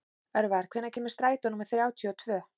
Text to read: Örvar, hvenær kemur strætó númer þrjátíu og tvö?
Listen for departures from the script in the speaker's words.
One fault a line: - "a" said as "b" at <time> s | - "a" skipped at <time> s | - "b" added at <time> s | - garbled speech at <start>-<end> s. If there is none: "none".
none